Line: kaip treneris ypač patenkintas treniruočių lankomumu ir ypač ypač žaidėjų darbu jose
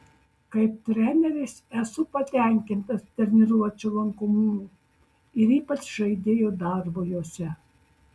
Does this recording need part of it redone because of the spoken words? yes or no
yes